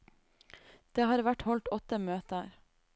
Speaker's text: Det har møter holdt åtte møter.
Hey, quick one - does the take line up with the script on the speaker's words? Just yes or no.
no